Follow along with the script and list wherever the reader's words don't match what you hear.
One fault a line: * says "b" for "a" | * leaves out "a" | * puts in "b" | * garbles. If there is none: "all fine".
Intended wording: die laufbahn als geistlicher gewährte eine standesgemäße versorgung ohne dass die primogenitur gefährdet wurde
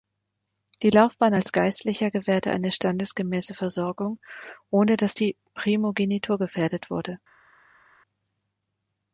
all fine